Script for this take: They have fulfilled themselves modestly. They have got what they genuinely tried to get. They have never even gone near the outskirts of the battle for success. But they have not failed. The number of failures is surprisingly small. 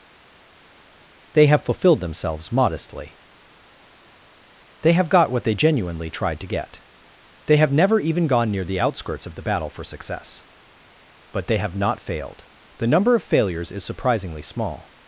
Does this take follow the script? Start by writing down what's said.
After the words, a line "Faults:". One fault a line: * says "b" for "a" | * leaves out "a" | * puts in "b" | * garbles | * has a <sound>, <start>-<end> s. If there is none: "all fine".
They have fulfilled themselves modestly. They have got what they genuinely tried to get. They have never even gone near the outskirts of the battle for success. But they have not failed. The number of failures is surprisingly small.
Faults:
all fine